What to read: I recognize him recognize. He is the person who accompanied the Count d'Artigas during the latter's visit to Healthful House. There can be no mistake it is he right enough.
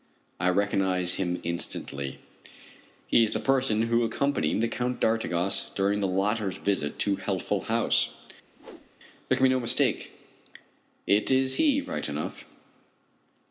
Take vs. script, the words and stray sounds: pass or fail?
fail